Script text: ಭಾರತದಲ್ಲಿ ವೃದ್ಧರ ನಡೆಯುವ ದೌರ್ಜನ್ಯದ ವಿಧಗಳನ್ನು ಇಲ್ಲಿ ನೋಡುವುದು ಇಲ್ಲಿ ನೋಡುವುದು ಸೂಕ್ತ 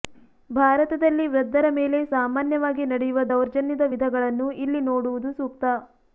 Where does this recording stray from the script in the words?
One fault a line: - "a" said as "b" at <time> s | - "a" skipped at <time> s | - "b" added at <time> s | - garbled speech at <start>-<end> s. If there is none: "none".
- "ಮೇಲೆ ಸಾಮಾನ್ಯವಾಗಿ" added at 1.8 s
- "ಇಲ್ಲಿ ನೋಡುವುದು" skipped at 5.3 s